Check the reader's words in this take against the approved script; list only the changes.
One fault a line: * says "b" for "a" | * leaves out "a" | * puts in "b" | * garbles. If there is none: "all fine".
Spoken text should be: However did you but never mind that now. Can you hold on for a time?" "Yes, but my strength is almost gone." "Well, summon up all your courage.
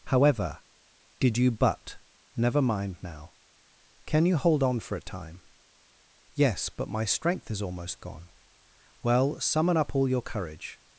* leaves out "that"